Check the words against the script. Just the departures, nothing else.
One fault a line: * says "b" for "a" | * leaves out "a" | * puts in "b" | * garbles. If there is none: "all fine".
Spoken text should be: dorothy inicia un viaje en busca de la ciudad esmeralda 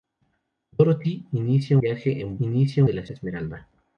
* leaves out "un"
* says "inicia" for "busca"
* leaves out "ciudad"